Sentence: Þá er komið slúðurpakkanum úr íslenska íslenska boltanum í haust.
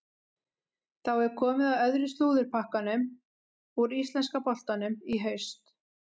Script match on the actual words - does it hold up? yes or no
no